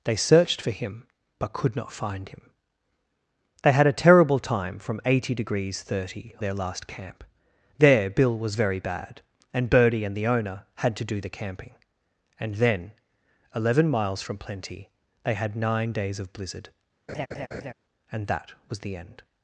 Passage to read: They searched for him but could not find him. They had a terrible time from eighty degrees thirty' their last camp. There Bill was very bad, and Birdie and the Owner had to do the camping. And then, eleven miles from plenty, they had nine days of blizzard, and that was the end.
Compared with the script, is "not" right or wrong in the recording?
right